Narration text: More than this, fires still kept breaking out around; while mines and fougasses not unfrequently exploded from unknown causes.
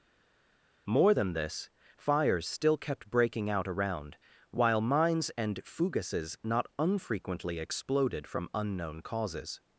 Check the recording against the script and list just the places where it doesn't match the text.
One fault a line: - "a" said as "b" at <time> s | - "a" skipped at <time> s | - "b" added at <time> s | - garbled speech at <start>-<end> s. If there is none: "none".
none